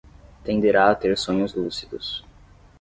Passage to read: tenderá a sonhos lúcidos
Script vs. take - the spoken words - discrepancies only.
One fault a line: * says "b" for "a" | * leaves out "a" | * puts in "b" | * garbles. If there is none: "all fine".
* puts in "ter"